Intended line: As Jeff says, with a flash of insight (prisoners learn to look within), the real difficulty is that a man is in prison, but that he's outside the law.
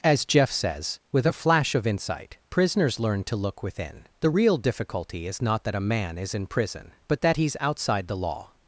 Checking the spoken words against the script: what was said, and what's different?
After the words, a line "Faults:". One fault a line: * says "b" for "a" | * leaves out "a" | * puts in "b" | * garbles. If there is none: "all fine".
As Jeff says, with a flash of insight (prisoners learn to look within), the real difficulty is not that a man is in prison, but that he's outside the law.
Faults:
* puts in "not"